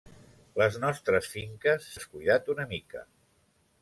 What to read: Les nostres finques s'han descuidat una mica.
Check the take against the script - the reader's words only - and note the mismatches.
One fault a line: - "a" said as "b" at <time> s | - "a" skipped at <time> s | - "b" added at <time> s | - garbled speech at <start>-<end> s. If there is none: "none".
- "s'han" skipped at 1.9 s